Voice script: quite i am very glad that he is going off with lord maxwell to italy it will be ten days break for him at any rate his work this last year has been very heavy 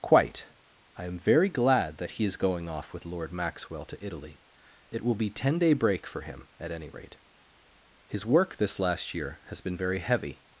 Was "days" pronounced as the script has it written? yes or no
no